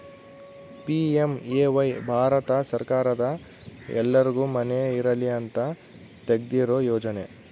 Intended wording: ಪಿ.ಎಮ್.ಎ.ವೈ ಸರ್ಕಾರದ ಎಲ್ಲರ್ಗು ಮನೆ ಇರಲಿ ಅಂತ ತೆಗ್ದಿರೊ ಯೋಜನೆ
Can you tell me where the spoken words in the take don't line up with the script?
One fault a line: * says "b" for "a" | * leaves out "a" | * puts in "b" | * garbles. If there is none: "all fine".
* puts in "ಭಾರತ"